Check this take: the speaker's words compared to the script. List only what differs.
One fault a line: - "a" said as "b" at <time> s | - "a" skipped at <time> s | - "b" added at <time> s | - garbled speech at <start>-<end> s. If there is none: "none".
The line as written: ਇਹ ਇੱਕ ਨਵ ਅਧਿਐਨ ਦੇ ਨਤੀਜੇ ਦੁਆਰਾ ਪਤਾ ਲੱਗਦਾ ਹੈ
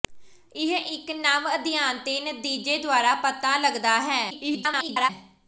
- garbled speech at 4.3-5.1 s